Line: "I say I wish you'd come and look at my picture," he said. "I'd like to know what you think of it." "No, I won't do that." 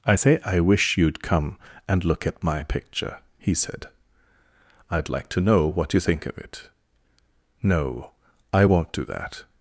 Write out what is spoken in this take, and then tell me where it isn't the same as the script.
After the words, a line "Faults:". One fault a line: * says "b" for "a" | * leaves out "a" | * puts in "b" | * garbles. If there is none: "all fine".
"I say I wish you'd come and look at my picture," he said. "I'd like to know what you think of it." "No, I won't do that."
Faults:
all fine